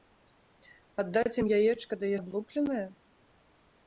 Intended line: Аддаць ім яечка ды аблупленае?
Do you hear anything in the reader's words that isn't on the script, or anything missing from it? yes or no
no